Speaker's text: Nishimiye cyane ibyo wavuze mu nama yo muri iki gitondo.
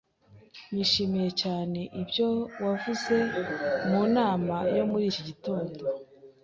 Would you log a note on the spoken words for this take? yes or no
no